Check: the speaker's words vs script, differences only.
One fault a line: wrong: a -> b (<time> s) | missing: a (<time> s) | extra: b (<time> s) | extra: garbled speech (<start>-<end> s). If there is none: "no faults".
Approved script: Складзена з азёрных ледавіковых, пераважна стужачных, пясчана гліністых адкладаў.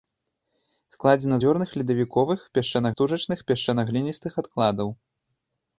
missing: з (1.4 s)
wrong: пераважна -> пясчана (2.6 s)